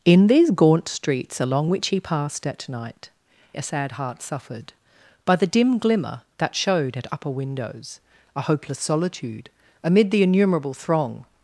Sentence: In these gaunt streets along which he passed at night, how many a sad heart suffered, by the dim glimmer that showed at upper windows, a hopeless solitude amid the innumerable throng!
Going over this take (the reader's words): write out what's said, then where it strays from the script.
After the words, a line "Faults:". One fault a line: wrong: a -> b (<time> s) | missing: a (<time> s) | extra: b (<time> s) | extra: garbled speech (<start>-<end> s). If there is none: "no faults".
In these gaunt streets along which he passed at night, a sad heart suffered, by the dim glimmer that showed at upper windows, a hopeless solitude amid the innumerable throng!
Faults:
missing: how many (3.1 s)